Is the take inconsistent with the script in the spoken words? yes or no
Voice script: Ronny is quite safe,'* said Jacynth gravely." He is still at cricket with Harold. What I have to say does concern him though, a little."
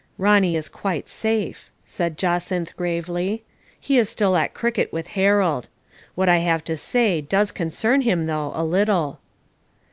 no